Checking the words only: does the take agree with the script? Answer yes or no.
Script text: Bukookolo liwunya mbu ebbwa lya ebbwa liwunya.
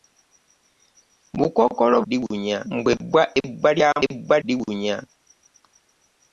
yes